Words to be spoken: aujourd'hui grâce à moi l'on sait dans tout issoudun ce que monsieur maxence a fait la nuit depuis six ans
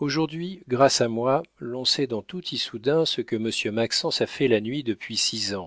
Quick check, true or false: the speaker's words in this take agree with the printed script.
true